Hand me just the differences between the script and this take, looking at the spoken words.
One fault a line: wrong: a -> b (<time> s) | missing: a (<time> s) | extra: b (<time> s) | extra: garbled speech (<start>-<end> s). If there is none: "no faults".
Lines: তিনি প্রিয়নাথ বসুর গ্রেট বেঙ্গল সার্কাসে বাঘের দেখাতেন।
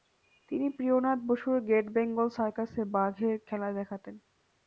extra: খেলা (3.5 s)